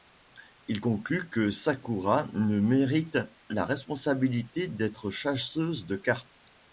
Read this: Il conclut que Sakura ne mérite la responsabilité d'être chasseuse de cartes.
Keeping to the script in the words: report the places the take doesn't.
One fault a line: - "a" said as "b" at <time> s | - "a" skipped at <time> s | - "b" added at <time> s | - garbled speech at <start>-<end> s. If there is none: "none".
none